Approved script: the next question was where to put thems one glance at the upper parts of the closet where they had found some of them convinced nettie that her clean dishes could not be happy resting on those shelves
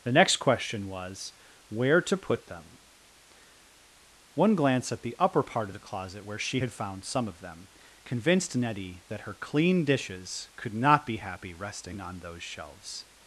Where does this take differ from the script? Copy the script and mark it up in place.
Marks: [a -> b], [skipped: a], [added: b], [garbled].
the next question was where to put [thems -> them] one glance at the upper [parts -> part] of the closet where [they -> she] had found some of them convinced nettie that her clean dishes could not be happy resting on those shelves